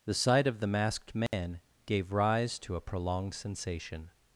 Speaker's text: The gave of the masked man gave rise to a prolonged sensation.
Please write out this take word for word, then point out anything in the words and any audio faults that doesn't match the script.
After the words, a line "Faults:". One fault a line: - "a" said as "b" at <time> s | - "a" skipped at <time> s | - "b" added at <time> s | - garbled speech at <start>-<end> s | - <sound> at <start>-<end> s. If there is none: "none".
The sight of the masked man gave rise to a prolonged sensation.
Faults:
- "gave" said as "sight" at 0.1 s
- dropout at 1.3-1.3 s